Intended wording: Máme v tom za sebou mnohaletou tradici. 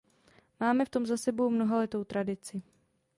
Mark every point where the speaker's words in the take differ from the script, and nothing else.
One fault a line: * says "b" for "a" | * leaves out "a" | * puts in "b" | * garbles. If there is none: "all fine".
all fine